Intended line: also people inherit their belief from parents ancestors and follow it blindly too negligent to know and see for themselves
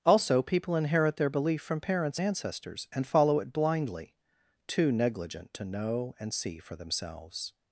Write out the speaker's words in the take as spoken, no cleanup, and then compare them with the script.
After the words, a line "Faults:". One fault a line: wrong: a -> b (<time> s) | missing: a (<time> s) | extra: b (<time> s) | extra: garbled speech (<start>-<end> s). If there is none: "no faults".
also people inherit their belief from parents ancestors and follow it blindly too negligent to know and see for themselves
Faults:
no faults